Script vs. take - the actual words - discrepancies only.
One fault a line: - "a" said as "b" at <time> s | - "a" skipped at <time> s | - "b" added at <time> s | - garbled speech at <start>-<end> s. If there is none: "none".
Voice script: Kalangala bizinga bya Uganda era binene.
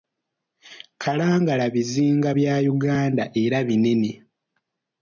none